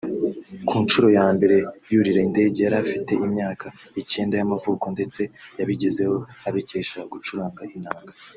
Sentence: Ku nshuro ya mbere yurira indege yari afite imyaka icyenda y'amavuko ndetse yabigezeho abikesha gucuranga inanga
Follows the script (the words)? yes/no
yes